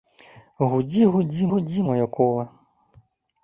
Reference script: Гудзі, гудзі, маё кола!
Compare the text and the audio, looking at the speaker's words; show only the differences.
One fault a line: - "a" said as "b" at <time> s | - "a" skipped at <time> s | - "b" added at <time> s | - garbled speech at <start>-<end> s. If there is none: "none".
- "гудзі" added at 1.5 s